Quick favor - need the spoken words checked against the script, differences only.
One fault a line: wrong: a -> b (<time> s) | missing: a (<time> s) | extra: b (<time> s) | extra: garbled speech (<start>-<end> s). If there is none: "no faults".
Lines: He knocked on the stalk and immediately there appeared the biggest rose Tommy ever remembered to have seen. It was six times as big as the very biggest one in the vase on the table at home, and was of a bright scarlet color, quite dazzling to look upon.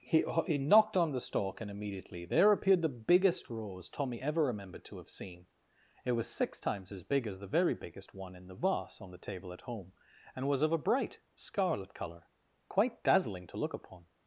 extra: he (0.5 s)